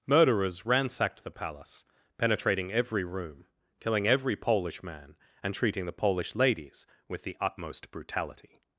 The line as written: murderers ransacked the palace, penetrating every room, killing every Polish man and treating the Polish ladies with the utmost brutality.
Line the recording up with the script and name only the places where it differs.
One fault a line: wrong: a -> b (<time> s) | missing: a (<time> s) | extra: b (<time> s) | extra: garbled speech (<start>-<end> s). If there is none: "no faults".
no faults